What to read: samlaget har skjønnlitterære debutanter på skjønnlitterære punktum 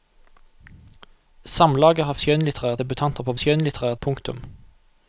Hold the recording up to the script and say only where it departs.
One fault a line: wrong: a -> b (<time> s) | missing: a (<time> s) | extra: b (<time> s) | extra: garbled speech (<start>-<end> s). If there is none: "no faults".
no faults